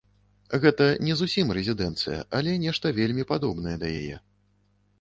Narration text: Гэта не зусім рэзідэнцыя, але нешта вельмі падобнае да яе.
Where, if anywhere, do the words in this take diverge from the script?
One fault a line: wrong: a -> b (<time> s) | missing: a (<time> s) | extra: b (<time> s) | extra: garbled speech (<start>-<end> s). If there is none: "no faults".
no faults